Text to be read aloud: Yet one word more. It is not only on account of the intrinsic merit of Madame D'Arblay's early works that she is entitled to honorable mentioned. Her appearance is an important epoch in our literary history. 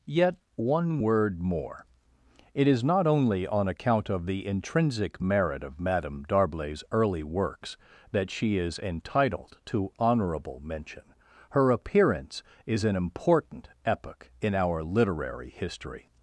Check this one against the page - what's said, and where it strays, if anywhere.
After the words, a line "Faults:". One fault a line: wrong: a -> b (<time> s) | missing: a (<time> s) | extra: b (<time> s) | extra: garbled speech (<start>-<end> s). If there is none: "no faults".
Yet one word more. It is not only on account of the intrinsic merit of Madame D'Arblay's early works that she is entitled to honorable mention. Her appearance is an important epoch in our literary history.
Faults:
wrong: mentioned -> mention (10.6 s)